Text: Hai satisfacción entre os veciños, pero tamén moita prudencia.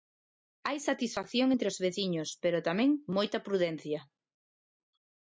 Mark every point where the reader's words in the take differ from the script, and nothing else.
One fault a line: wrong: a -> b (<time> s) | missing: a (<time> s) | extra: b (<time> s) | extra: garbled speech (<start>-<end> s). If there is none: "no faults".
no faults